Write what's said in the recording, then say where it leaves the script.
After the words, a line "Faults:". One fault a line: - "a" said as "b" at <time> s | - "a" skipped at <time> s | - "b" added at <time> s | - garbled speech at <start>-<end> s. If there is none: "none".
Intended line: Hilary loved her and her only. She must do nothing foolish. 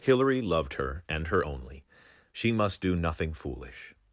Hilary loved her and her only. She must do nothing foolish.
Faults:
none